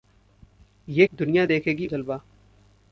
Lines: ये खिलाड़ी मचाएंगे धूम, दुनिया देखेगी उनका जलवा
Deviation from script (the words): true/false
true